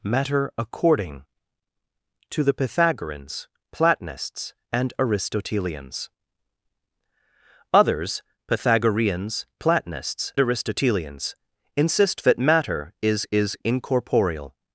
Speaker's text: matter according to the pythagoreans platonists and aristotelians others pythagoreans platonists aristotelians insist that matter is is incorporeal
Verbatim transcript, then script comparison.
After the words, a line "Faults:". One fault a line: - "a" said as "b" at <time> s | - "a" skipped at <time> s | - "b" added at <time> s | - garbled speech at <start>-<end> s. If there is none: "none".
matter according to the pythagoreans platonists and aristotelians others pythagoreans platonists aristotelians insist that matter is is incorporeal
Faults:
none